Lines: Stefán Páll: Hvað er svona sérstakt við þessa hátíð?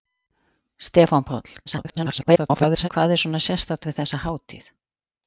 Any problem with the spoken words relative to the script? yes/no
yes